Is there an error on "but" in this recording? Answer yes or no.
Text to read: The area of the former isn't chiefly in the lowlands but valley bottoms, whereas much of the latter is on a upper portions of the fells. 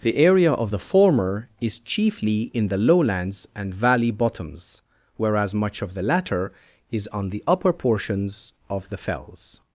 yes